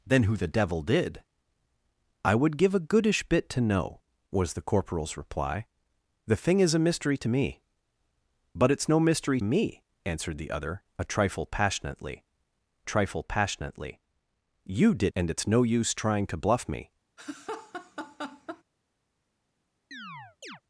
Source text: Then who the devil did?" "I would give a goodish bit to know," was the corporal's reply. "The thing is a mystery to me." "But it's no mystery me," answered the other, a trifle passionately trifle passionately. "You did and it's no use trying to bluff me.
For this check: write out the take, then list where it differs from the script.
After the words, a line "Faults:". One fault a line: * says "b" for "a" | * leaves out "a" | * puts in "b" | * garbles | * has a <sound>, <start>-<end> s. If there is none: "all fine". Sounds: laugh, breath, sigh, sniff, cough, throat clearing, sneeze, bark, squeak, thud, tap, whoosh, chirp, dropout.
Then who the devil did?" "I would give a goodish bit to know," was the corporal's reply. "The thing is a mystery to me." "But it's no mystery me," answered the other, a trifle passionately trifle passionately. "You did and it's no use trying to bluff me.
Faults:
* has a laugh, 17.2-18.6 s
* has a chirp, 19.9-20.6 s